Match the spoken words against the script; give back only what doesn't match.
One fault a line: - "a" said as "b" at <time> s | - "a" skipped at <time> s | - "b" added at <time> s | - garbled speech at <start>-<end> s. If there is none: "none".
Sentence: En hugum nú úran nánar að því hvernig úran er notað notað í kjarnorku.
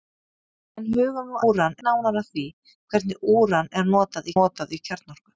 none